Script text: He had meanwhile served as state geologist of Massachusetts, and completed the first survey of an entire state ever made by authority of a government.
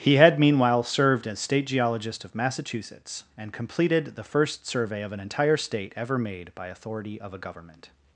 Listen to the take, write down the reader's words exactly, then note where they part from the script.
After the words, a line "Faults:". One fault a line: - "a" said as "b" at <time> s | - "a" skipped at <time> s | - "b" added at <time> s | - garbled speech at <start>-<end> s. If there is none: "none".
He had meanwhile served as state geologist of Massachusetts, and completed the first survey of an entire state ever made by authority of a government.
Faults:
none